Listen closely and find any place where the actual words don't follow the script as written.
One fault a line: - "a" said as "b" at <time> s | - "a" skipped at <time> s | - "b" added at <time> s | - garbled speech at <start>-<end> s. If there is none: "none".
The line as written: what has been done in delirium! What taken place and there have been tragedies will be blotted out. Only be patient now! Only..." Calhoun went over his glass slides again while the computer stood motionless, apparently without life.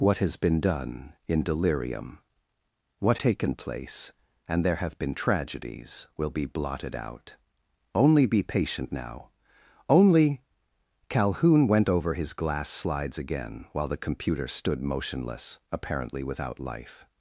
none